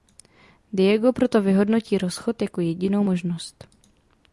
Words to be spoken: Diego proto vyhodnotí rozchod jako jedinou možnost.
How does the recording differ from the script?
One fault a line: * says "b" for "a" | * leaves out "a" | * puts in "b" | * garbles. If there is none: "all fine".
all fine